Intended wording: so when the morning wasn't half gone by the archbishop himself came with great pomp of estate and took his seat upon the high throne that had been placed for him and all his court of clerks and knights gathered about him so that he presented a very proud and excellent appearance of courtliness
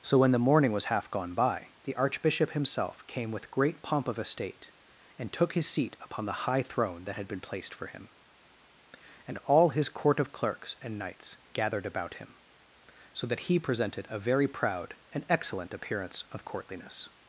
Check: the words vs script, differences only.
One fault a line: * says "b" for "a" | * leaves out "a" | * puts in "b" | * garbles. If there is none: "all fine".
* says "was" for "wasn't"